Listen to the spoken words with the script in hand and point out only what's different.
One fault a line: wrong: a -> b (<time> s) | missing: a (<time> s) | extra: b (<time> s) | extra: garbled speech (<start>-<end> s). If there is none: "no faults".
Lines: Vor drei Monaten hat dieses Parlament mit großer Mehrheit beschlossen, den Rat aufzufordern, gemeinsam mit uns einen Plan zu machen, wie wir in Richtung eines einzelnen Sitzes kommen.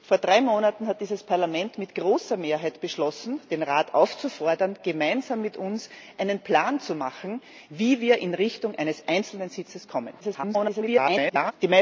extra: garbled speech (10.2-11.5 s)